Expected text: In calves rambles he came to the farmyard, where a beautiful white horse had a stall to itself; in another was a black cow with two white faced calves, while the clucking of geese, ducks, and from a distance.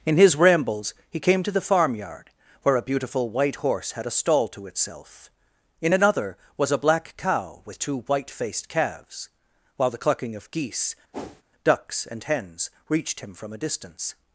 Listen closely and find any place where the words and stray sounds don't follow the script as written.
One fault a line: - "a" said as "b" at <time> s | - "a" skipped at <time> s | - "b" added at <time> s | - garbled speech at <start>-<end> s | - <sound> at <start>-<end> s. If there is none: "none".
- "calves" said as "his" at 0.2 s
- whoosh at 11.1-11.4 s
- "hens reached him" added at 12.2 s